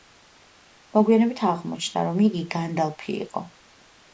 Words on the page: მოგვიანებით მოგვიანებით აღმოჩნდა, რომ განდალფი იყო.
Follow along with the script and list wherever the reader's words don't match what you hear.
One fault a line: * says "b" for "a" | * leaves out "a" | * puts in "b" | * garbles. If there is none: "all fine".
* leaves out "მოგვიანებით"
* puts in "იგი"